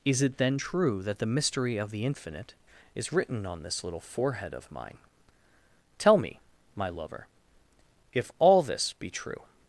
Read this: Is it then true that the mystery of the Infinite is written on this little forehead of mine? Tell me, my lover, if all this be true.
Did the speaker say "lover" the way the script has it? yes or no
yes